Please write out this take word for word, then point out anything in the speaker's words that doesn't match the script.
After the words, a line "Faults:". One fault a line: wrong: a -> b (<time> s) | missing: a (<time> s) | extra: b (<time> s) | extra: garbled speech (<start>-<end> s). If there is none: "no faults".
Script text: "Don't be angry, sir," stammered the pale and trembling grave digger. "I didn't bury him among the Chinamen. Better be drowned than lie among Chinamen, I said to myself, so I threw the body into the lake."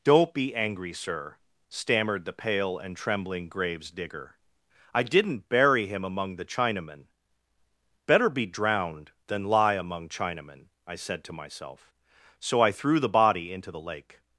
"Don't be angry, sir," stammered the pale and trembling graves digger. "I didn't bury him among the Chinamen. Better be drowned than lie among Chinamen, I said to myself, so I threw the body into the lake."
Faults:
wrong: grave -> graves (3.5 s)